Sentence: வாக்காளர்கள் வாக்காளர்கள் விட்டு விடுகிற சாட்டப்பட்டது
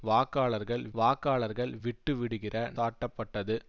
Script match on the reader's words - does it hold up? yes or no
yes